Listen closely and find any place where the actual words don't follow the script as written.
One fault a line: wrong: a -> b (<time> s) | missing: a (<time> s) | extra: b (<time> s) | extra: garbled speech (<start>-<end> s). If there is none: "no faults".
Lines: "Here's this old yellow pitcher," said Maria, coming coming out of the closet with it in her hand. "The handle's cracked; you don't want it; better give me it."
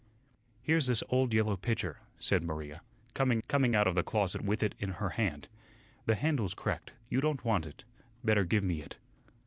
no faults